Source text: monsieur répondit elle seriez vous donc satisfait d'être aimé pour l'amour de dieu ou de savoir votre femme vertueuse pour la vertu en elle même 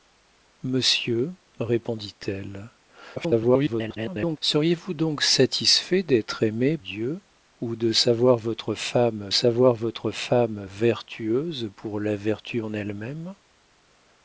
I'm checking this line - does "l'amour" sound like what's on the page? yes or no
no